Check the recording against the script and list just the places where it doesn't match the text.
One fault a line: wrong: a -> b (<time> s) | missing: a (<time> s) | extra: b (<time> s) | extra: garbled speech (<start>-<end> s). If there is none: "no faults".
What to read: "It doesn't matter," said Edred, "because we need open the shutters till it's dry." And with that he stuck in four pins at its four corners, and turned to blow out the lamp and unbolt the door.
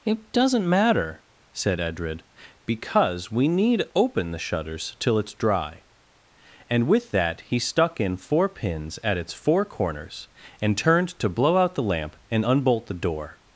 no faults